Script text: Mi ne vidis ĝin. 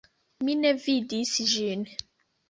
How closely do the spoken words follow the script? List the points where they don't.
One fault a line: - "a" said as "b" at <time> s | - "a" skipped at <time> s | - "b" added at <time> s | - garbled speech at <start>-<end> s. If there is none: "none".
none